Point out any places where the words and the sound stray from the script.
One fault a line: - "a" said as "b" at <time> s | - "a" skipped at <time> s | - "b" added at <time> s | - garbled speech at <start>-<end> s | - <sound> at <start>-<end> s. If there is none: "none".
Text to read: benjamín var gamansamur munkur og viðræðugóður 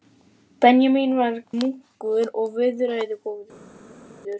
- "gamansamur" skipped at 1.4 s